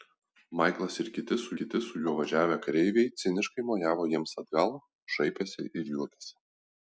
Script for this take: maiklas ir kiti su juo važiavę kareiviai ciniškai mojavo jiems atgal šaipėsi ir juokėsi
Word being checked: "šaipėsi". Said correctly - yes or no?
yes